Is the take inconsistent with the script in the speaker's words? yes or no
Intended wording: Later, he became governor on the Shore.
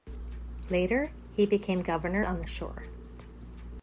no